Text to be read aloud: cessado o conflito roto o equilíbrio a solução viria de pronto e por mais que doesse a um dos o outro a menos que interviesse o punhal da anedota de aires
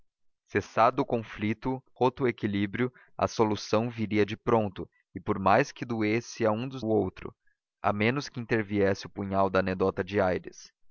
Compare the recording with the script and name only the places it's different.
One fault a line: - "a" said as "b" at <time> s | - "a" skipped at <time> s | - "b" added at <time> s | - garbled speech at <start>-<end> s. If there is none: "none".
none